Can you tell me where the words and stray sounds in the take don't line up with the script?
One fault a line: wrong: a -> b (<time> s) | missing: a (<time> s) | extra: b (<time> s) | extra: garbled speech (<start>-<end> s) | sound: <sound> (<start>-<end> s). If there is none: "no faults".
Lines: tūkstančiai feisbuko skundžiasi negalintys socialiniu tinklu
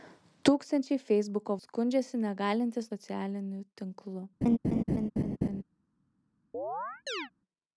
sound: laugh (4.4-5.6 s)
sound: chirp (6.5-7.3 s)